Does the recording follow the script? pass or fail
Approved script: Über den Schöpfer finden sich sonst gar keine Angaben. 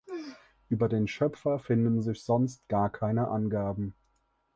pass